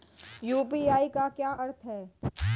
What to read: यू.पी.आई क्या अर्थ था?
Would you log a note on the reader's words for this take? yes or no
yes